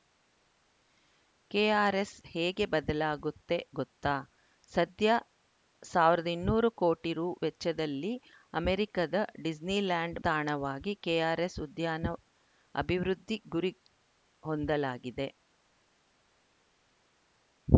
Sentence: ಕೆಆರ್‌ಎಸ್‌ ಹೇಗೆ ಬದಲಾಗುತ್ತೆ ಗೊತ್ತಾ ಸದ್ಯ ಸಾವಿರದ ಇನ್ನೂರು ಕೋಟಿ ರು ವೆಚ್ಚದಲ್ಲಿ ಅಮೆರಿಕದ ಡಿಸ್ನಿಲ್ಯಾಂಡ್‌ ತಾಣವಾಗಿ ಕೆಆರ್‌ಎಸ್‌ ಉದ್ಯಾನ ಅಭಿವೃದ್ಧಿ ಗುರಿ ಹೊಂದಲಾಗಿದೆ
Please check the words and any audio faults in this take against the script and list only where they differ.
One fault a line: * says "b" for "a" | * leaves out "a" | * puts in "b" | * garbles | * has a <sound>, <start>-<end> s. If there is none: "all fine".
all fine